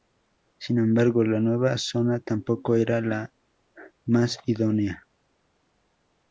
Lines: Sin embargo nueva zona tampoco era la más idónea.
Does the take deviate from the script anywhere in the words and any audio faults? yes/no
yes